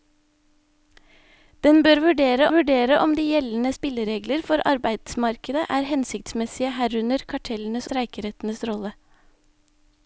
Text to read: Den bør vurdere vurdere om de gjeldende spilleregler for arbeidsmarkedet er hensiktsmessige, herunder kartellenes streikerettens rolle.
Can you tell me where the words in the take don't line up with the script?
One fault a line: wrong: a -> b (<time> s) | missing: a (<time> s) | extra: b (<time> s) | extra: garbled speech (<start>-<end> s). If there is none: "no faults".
no faults